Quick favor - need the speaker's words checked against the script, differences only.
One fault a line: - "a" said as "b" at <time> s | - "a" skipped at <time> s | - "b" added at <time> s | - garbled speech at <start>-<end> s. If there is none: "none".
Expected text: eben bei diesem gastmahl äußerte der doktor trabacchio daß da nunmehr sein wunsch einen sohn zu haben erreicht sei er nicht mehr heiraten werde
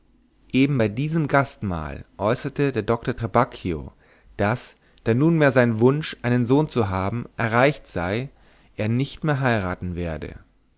none